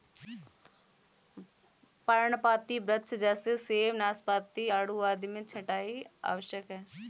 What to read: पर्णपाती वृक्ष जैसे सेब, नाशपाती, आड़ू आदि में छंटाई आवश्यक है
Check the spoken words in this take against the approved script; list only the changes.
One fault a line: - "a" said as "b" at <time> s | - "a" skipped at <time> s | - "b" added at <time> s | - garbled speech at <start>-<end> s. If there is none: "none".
none